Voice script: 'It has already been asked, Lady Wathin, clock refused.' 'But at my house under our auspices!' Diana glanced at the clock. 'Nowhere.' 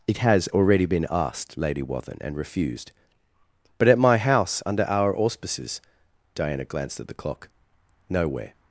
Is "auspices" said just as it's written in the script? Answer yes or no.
yes